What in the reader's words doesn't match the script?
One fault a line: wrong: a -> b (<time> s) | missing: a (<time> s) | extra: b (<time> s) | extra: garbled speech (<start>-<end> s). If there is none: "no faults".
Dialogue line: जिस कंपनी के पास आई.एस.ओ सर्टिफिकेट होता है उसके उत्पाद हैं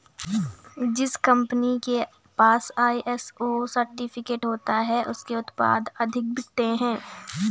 extra: अधिक बिकते (6.0 s)